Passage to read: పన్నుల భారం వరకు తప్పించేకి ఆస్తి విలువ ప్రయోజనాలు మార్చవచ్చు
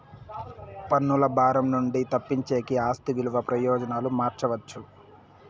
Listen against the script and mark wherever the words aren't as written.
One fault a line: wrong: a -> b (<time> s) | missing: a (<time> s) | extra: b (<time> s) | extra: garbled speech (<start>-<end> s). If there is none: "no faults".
wrong: వరకు -> నుండి (1.7 s)